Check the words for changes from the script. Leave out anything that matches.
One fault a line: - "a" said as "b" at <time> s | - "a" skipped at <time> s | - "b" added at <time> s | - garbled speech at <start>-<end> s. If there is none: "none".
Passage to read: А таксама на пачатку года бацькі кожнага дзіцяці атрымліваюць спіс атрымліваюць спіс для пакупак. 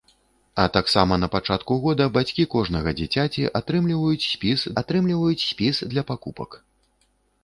none